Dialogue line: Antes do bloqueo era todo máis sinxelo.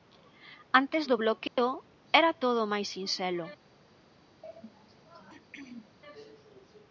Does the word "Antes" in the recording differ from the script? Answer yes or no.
no